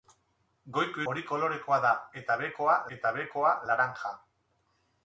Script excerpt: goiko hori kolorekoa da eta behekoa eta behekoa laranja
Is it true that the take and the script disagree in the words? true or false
false